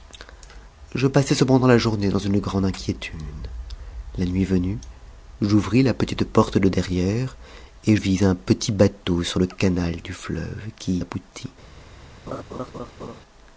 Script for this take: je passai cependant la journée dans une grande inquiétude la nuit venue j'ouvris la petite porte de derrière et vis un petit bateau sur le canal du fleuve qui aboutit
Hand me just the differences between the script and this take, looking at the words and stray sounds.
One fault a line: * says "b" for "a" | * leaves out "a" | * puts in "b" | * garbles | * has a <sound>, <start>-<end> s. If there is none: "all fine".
* has a laugh, 12.3-13.2 s